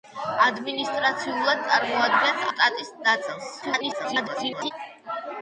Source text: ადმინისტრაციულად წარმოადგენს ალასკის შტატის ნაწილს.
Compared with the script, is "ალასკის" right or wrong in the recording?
wrong